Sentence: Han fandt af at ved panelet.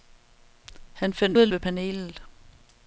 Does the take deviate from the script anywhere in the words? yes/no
no